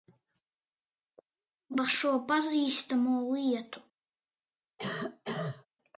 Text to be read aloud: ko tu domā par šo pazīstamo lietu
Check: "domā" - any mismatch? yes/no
yes